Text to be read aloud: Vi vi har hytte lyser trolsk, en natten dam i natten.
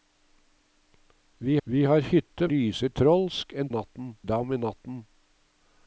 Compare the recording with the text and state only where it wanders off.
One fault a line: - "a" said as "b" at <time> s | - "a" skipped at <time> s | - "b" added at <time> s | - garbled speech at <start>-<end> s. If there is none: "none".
none